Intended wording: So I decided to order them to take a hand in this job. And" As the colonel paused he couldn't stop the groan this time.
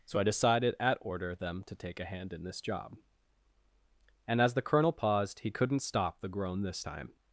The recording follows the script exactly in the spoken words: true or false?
false